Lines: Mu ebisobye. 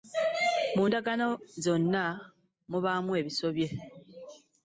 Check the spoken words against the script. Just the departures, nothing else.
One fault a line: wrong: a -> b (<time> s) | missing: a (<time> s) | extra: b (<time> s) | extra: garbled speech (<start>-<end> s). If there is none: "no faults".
extra: ndagaano zonna mubaamu (0.9 s)